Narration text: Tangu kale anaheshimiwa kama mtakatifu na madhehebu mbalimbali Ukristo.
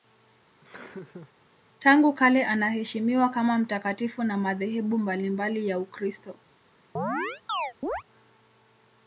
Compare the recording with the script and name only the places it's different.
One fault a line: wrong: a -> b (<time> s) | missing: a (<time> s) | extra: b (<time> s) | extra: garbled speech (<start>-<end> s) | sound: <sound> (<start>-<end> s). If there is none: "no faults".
sound: laugh (0.6-1.3 s)
extra: ya (5.7 s)
sound: chirp (7.0-8.0 s)